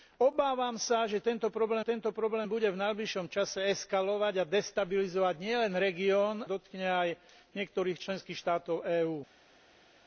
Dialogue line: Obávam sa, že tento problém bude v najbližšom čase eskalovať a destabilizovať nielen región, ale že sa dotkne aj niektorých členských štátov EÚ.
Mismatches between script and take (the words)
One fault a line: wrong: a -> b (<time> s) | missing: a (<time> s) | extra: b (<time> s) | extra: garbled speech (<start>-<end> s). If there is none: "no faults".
extra: tento problém (1.8 s)
missing: ale že sa (6.4 s)